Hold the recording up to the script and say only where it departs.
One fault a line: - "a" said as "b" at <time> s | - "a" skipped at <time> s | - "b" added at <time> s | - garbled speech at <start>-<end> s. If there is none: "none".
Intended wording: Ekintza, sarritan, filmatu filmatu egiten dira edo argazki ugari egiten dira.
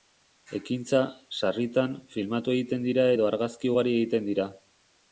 - "filmatu" skipped at 2.6 s